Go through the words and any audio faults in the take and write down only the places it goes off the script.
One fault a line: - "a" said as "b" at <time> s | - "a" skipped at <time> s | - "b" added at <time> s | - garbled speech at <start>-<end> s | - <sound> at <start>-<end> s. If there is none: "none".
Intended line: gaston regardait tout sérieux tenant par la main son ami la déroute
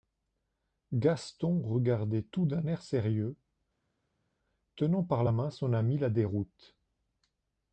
- "d'un air" added at 2.5 s